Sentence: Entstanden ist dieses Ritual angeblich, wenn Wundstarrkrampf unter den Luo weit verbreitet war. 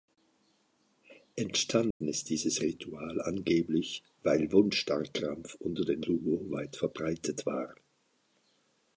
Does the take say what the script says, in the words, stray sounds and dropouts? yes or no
no